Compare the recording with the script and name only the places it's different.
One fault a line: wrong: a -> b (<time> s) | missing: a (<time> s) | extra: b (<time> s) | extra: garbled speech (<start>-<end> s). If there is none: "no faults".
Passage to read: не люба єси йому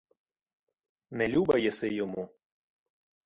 no faults